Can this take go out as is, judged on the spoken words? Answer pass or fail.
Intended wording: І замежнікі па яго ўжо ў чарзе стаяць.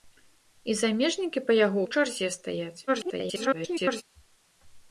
fail